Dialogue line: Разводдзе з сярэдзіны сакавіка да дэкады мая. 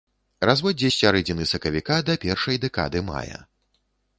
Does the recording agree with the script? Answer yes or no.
no